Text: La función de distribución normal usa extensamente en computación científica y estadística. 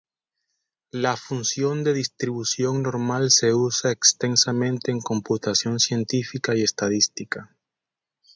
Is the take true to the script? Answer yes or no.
no